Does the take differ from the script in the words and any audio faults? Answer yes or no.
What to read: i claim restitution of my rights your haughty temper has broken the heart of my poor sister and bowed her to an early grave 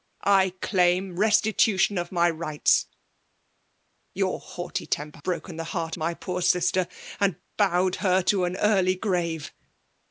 yes